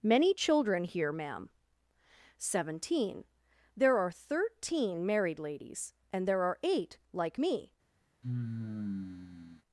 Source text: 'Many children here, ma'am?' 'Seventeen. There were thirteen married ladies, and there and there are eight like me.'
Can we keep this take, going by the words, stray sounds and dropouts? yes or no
no